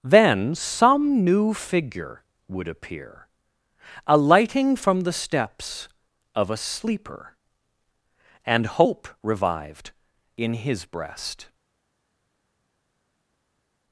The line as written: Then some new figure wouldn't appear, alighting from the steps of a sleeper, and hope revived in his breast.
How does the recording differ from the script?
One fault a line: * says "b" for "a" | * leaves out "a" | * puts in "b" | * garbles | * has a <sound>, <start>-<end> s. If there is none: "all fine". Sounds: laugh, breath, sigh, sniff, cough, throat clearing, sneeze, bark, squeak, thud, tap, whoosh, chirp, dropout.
* says "would" for "wouldn't"